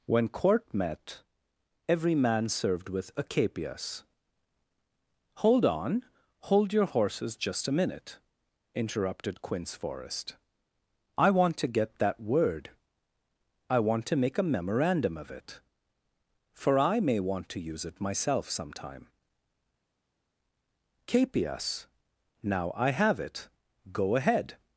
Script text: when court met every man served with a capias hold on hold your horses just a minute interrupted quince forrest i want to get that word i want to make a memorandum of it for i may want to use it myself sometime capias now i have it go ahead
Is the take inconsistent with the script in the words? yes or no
no